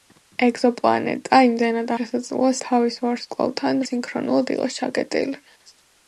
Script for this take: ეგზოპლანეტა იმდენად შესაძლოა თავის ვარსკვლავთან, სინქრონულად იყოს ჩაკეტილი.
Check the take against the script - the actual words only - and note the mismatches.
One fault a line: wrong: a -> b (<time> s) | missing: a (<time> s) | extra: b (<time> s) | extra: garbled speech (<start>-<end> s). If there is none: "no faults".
no faults